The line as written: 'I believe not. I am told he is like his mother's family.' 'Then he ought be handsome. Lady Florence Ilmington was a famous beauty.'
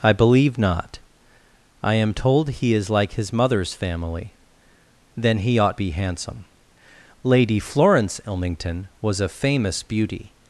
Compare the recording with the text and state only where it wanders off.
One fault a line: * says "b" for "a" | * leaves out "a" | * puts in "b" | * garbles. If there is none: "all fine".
all fine